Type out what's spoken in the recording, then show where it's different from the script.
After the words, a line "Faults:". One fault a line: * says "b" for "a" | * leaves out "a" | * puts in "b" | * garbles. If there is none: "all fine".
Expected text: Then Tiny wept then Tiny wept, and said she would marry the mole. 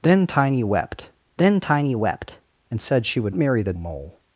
Then Tiny wept then Tiny wept, and said she would marry the mole.
Faults:
all fine